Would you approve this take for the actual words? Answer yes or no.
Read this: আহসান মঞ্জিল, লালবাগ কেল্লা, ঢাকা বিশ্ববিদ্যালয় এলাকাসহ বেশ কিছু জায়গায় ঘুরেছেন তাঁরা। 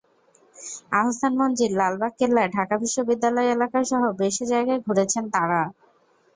no